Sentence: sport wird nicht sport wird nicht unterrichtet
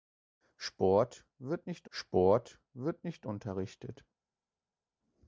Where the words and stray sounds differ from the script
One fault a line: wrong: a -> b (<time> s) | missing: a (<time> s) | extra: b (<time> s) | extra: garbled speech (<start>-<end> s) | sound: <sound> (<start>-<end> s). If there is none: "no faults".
no faults